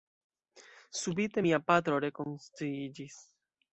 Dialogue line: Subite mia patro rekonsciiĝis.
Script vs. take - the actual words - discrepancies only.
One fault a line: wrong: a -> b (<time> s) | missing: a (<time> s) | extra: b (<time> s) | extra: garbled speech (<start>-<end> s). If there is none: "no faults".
no faults